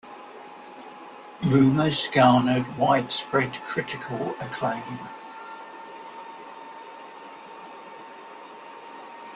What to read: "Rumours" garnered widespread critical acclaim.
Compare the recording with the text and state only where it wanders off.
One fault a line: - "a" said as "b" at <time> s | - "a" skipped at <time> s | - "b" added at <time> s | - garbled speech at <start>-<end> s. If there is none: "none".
none